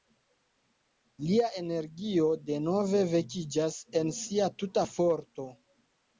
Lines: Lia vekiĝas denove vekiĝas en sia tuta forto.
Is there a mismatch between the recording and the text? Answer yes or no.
yes